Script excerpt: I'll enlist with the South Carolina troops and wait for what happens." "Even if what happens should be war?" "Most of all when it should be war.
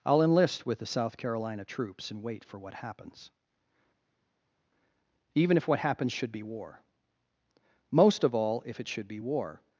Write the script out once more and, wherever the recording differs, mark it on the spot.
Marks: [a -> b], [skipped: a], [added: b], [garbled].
I'll enlist with the South Carolina troops and wait for what happens." "Even if what happens should be war?" "Most of all [when -> if] it should be war.